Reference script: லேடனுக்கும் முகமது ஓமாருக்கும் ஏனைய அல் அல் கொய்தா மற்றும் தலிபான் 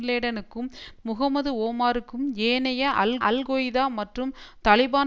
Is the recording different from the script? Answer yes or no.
no